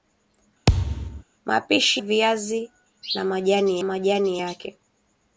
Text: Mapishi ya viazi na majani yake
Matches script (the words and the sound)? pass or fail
fail